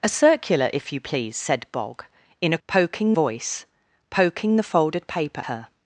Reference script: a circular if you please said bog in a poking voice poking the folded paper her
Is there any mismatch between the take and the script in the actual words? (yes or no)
no